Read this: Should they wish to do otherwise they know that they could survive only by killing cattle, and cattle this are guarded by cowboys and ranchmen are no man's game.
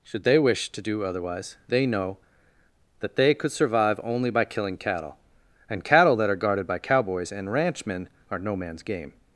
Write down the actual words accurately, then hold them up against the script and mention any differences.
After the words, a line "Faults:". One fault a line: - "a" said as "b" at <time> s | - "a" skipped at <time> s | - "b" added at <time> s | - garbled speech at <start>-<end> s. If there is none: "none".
Should they wish to do otherwise they know that they could survive only by killing cattle, and cattle that are guarded by cowboys and ranchmen are no man's game.
Faults:
- "this" said as "that" at 6.2 s